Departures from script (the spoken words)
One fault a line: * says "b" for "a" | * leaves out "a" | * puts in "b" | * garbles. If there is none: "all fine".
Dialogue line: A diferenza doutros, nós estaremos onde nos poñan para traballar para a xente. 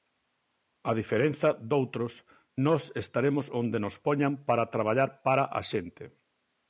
all fine